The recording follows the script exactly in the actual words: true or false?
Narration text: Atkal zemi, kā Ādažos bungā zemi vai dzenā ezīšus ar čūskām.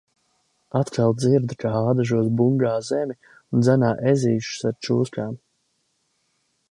false